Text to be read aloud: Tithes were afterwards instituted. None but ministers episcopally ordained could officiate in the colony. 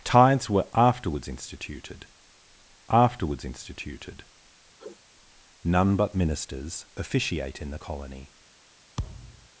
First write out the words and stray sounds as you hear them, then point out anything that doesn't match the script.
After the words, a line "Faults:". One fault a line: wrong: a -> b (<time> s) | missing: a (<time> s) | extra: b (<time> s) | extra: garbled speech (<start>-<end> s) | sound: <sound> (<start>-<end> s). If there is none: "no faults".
Tithes were afterwards instituted afterwards instituted. None but ministers officiate in the colony.
Faults:
extra: afterwards instituted (2.9 s)
sound: sniff (4.8-5.0 s)
missing: episcopally ordained could (6.8 s)
sound: thud (9.0-9.5 s)